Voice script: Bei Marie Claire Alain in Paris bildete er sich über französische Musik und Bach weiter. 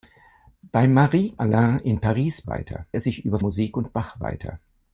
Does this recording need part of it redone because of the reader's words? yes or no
yes